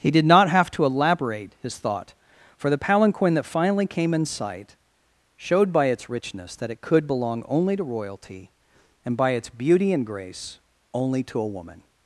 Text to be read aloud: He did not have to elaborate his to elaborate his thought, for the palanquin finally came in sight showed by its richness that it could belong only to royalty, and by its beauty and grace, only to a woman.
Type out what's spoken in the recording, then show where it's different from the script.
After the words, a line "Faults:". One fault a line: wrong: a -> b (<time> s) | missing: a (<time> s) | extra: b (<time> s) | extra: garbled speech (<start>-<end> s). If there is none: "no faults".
He did not have to elaborate his thought, for the palanquin that finally came in sight showed by its richness that it could belong only to royalty, and by its beauty and grace, only to a woman.
Faults:
missing: to elaborate his (1.8 s)
extra: that (3.4 s)